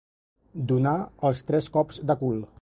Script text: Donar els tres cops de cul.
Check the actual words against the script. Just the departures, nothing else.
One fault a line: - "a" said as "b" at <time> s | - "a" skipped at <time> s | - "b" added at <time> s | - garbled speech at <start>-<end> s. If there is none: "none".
none